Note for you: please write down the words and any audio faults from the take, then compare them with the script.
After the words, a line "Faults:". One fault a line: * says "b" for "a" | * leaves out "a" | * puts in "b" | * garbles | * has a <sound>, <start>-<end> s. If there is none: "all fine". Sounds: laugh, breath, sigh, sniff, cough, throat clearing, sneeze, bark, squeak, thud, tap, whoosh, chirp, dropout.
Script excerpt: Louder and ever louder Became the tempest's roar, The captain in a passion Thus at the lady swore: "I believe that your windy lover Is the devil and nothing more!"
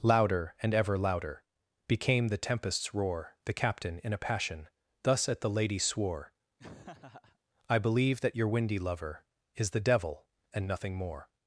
Louder and ever louder Became the tempest's roar, The captain in a passion Thus at the lady swore: "I believe that your windy lover Is the devil and nothing more!"
Faults:
* has a laugh, 6.6-7.4 s